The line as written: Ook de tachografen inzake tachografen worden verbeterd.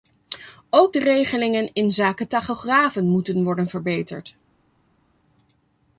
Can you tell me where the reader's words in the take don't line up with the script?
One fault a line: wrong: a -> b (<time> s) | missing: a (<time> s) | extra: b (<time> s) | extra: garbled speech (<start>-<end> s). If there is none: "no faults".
wrong: tachografen -> regelingen (1.0 s)
extra: moeten (3.1 s)